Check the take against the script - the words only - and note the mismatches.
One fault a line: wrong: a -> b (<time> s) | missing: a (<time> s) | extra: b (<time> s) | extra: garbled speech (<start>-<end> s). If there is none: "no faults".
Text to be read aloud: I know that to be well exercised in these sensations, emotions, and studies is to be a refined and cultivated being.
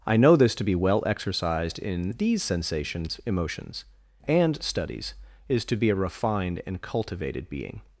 wrong: that -> this (0.3 s)